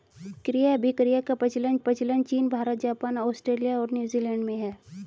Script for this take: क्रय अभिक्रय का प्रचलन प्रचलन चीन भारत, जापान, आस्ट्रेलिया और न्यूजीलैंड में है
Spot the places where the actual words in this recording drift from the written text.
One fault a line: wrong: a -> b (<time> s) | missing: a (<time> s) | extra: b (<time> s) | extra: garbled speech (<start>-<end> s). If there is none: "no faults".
no faults